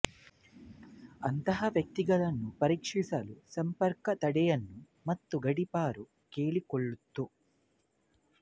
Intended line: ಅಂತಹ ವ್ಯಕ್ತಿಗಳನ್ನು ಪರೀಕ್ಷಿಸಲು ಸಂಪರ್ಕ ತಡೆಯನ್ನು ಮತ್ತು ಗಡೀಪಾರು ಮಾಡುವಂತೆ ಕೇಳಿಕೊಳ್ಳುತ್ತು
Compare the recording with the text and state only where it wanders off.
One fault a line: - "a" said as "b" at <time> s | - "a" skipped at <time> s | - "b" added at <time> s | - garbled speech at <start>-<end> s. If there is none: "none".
- "ಮಾಡುವಂತೆ" skipped at 6.0 s